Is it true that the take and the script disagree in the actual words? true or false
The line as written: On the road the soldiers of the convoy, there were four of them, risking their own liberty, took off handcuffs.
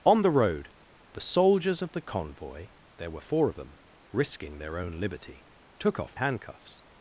false